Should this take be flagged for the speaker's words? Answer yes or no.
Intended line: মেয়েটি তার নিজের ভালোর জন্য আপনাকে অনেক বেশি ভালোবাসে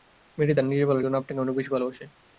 no